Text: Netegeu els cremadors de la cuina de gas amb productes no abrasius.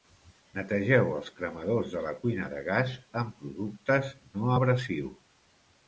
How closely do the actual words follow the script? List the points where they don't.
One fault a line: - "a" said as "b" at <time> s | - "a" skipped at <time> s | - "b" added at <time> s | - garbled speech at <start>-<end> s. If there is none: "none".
none